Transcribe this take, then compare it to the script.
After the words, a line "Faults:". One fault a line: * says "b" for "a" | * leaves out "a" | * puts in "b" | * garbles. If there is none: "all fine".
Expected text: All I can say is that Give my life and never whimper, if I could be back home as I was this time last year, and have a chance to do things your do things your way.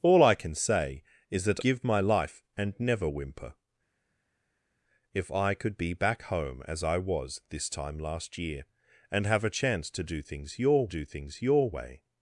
All I can say is that Give my life and never whimper, if I could be back home as I was this time last year, and have a chance to do things your do things your way.
Faults:
all fine